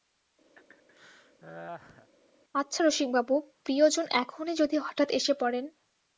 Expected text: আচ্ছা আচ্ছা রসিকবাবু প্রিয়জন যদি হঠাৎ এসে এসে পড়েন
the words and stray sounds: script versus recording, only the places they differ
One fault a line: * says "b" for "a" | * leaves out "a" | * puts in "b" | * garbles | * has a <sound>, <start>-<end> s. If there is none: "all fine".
* has a laugh, 0.6-2.1 s
* leaves out "আচ্ছা"
* puts in "এখনই"
* leaves out "এসে"